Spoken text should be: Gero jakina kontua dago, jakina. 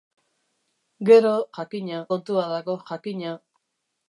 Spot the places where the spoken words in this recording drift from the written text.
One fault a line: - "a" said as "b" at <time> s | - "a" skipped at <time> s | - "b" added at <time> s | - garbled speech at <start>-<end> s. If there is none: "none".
none